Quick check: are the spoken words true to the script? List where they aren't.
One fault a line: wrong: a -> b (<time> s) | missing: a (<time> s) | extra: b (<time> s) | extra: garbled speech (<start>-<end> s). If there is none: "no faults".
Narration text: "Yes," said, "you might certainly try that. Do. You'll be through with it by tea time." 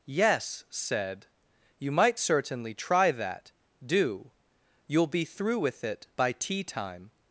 no faults